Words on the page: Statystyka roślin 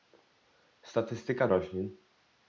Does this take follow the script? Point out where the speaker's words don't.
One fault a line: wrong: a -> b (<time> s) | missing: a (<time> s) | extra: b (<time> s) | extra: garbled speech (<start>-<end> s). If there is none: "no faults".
no faults